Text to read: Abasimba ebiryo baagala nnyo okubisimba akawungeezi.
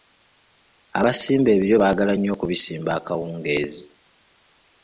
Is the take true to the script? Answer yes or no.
yes